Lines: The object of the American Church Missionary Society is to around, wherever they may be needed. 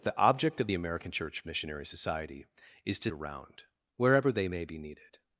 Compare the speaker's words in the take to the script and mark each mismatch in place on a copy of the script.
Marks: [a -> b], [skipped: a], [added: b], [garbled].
The object of the American Church Missionary Society is to around, wherever they may be needed.